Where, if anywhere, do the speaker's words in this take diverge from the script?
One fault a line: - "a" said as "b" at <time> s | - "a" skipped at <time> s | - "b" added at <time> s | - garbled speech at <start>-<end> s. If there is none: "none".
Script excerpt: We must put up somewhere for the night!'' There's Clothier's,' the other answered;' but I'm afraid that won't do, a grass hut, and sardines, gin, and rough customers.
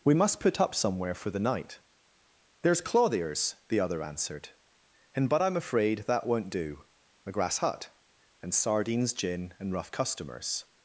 - "and" added at 5.1 s